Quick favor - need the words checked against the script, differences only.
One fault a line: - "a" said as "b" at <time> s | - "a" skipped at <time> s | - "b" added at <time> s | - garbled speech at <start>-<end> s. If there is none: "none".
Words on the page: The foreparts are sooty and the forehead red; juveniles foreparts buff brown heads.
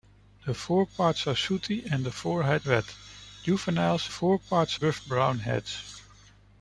none